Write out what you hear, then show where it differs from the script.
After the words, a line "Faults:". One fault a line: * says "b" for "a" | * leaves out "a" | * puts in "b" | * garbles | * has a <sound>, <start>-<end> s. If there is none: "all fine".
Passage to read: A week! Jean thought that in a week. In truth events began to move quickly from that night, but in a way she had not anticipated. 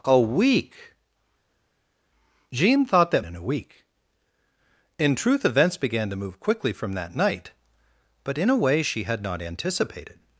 A week! Jean thought that in a week. In truth events began to move quickly from that night, but in a way she had not anticipated.
Faults:
all fine